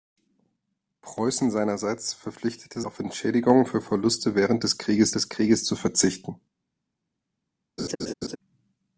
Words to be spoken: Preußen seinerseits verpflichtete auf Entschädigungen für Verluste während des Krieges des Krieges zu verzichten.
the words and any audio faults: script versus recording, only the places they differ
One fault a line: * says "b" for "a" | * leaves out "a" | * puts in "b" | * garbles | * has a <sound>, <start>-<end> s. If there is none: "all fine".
* has a laugh, 7.8-8.4 s